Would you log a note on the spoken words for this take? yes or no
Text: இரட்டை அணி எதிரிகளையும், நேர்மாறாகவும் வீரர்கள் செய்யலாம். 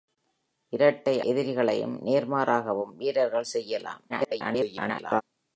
yes